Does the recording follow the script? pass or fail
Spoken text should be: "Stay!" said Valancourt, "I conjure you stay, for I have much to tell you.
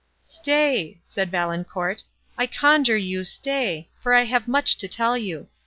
pass